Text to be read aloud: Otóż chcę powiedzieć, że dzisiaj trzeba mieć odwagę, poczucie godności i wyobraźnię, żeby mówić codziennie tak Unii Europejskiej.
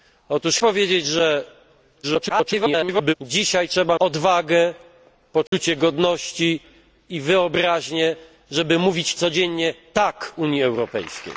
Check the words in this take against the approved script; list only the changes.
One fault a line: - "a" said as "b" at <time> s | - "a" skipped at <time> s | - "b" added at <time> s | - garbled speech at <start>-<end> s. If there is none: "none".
- "chcę" skipped at 0.6 s
- garbled speech at 2.0-3.1 s
- "mieć" skipped at 4.0 s